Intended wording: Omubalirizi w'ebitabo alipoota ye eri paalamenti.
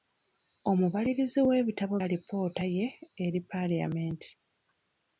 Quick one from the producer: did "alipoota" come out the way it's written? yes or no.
yes